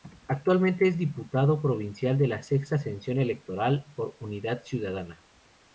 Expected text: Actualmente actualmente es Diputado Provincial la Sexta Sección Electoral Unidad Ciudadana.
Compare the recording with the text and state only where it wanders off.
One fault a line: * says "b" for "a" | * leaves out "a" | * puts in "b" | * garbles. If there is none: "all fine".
* leaves out "actualmente"
* puts in "de"
* puts in "por"